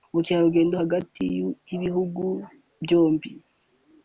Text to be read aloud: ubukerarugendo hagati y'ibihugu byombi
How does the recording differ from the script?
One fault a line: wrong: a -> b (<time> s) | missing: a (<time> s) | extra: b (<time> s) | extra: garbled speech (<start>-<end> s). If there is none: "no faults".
no faults